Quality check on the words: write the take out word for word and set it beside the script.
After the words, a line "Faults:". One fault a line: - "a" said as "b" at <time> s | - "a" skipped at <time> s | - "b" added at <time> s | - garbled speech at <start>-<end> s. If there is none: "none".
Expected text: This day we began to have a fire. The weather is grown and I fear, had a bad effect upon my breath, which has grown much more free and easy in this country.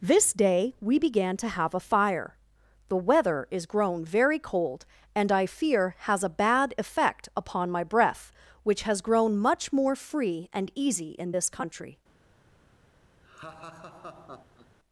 This day we began to have a fire. The weather is grown very cold, and I fear, has a bad effect upon my breath, which has grown much more free and easy in this country.
Faults:
- "very cold" added at 4.0 s
- "had" said as "has" at 6.0 s